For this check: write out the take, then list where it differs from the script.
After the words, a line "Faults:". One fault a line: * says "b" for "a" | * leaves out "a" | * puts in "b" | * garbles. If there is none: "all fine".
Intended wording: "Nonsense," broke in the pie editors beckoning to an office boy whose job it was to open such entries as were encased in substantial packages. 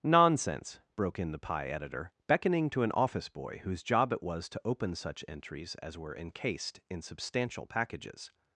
"Nonsense," broke in the pie editor beckoning to an office boy whose job it was to open such entries as were encased in substantial packages.
Faults:
* says "editor" for "editors"